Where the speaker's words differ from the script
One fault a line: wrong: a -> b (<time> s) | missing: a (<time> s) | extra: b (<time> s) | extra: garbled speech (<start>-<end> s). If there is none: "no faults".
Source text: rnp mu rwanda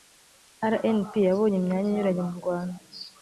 extra: yabonye imyanya inyuranye (1.3 s)